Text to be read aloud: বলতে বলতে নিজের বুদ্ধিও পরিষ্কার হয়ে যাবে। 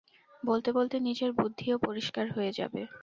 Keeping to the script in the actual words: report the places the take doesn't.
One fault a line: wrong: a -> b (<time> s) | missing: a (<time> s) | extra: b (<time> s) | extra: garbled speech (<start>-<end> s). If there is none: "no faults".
no faults